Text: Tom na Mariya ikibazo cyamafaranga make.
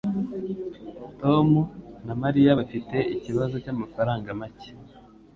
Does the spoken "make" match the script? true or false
true